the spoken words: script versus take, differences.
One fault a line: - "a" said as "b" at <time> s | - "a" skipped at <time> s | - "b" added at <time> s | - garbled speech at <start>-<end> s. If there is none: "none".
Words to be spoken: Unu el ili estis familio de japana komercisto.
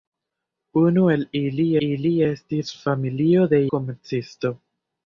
- "ili" added at 1.9 s
- "japana" skipped at 3.6 s